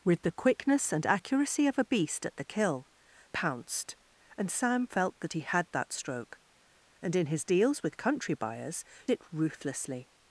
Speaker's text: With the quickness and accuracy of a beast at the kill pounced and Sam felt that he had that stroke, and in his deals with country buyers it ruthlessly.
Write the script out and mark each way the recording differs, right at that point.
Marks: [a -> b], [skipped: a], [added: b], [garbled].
With the quickness and accuracy of a beast at the kill pounced and Sam felt that he had that stroke, and in his deals with country buyers it ruthlessly.